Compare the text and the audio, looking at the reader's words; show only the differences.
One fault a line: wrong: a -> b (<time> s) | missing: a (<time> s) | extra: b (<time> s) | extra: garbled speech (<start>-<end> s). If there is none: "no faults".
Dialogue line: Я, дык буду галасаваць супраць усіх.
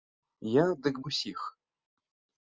missing: буду галасаваць супраць (0.9 s)